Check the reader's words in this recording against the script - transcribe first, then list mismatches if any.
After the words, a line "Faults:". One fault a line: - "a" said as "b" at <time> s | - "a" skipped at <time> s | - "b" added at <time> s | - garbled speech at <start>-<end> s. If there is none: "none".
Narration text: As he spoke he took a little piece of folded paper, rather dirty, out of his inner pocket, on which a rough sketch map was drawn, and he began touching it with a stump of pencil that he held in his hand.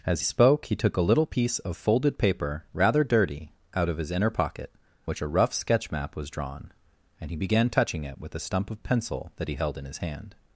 As spoke he took a little piece of folded paper, rather dirty, out of his inner pocket, which a rough sketch map was drawn, and he began touching it with a stump of pencil that he held in his hand.
Faults:
- "he" skipped at 0.2 s
- "on" skipped at 4.7 s